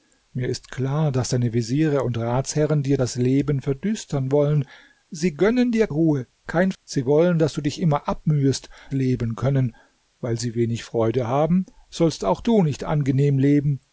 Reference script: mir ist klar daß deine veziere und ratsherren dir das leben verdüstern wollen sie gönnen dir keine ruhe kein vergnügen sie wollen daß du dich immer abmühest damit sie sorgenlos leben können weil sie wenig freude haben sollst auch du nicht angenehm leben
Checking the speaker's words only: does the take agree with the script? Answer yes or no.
no